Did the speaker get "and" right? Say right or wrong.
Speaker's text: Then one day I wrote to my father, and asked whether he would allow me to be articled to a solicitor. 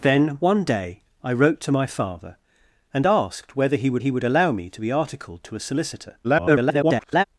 right